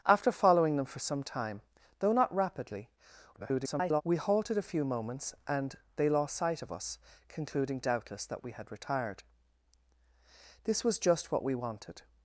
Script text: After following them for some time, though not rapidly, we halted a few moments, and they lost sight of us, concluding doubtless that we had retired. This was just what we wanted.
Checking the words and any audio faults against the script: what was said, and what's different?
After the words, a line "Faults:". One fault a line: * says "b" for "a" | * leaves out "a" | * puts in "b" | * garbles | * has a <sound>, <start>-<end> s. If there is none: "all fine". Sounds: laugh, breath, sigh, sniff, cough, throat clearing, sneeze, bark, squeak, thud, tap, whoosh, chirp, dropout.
After following them for some time, though not rapidly, [garbled] we halted a few moments, and they lost sight of us, concluding doubtless that we had retired. This was just what we wanted.
Faults:
* garbles